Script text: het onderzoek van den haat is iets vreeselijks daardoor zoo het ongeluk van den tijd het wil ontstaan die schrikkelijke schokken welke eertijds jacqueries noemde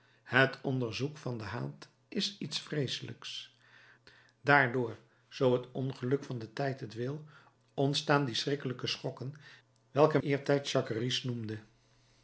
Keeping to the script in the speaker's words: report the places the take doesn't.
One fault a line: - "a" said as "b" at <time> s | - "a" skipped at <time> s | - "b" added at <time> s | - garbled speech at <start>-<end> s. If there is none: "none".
none